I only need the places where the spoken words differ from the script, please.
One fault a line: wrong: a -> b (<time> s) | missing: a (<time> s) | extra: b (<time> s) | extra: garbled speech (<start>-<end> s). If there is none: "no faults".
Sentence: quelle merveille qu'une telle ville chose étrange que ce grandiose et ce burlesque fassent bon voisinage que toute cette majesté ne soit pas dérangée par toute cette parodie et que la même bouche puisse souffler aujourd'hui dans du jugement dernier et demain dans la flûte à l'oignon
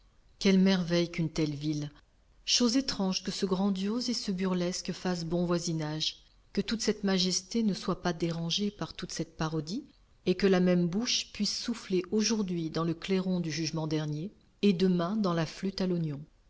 extra: le clairon (12.8 s)